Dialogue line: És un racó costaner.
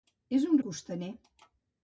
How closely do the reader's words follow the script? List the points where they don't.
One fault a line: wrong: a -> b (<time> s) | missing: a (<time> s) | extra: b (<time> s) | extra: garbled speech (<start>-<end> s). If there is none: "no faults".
missing: racó (0.6 s)